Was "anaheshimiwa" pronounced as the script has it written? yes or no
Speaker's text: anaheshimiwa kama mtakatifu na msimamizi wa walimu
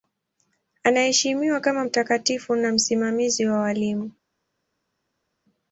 yes